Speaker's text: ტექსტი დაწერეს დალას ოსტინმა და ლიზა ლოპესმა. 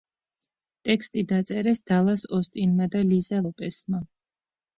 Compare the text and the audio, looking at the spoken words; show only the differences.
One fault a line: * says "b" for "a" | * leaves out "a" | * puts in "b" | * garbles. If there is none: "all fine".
all fine